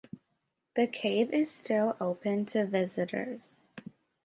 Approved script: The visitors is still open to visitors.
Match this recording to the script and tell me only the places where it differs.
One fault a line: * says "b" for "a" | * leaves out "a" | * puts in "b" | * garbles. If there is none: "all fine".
* says "cave" for "visitors"